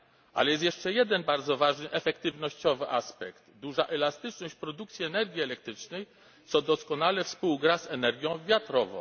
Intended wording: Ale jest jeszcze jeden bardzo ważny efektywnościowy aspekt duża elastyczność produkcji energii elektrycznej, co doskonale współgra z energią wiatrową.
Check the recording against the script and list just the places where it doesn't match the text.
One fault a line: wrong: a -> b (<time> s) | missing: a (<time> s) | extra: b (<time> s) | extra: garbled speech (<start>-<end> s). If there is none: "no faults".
no faults